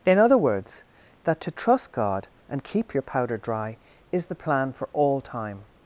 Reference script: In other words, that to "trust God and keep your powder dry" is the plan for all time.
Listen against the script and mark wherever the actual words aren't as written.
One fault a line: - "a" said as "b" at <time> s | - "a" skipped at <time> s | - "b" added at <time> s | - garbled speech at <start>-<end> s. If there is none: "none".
none